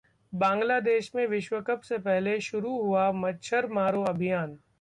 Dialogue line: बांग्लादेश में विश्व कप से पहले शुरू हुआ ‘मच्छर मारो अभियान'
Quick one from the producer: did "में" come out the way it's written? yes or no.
yes